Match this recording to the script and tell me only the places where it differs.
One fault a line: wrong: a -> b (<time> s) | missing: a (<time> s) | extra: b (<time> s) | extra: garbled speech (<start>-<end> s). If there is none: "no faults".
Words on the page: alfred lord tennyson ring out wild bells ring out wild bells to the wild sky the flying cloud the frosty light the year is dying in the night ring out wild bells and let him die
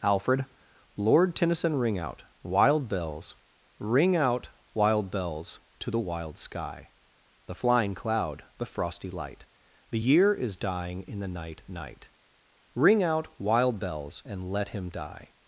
extra: night (11.7 s)